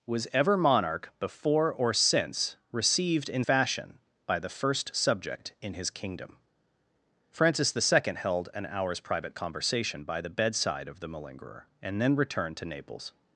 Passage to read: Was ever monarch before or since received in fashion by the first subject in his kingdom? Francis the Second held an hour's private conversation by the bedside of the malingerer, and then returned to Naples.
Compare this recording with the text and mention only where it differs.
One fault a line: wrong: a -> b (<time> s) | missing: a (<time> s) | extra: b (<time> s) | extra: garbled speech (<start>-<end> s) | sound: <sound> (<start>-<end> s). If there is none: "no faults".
no faults